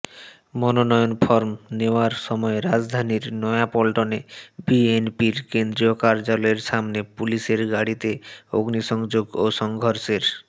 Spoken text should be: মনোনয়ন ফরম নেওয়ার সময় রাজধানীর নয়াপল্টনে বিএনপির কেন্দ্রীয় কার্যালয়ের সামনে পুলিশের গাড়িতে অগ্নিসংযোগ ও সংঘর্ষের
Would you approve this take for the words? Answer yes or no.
yes